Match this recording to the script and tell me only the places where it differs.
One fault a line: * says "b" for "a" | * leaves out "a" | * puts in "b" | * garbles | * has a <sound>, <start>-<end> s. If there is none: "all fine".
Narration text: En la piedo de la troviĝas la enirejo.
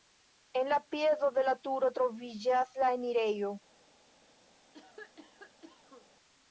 * puts in "turo"
* has a cough, 4.7-6.1 s